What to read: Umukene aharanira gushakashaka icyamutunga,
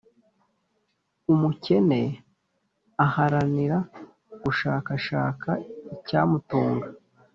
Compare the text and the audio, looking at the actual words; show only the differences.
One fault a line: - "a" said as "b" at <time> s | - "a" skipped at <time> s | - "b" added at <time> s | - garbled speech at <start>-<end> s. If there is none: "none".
none